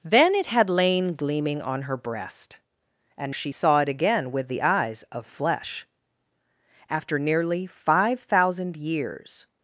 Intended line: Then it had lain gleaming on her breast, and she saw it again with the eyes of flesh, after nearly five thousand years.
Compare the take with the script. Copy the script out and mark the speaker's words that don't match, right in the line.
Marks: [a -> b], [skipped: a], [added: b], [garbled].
Then it had lain gleaming on her breast, and she saw it again with the eyes of flesh, after nearly five thousand years.